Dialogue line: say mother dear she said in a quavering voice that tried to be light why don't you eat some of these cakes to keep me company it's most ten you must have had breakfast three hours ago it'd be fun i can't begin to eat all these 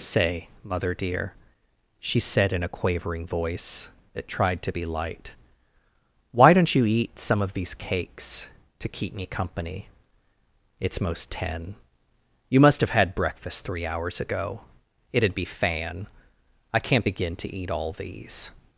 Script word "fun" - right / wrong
wrong